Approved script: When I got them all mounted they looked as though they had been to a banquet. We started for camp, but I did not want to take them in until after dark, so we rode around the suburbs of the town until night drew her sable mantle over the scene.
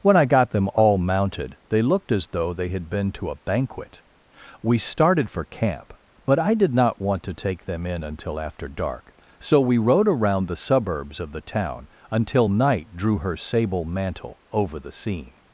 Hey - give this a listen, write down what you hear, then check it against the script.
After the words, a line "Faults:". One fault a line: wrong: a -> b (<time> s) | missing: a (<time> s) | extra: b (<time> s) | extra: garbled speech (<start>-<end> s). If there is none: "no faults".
When I got them all mounted they looked as though they had been to a banquet. We started for camp, but I did not want to take them in until after dark, so we rode around the suburbs of the town until night drew her sable mantle over the scene.
Faults:
no faults